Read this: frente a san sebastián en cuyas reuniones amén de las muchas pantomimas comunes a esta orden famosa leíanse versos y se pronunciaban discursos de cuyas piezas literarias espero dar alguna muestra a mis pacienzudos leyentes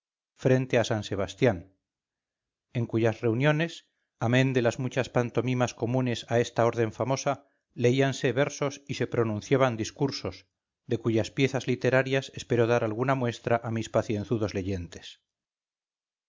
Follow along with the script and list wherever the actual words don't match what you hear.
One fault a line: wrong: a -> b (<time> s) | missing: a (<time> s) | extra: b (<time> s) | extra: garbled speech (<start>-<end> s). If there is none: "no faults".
no faults